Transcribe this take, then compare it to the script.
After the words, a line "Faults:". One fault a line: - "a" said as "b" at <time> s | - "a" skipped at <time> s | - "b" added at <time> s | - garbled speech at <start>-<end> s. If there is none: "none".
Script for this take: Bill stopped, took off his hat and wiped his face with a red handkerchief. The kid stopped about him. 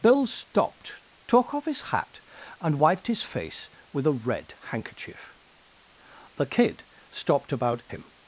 Bill stopped, took off his hat and wiped his face with a red handkerchief. The kid stopped about him.
Faults:
none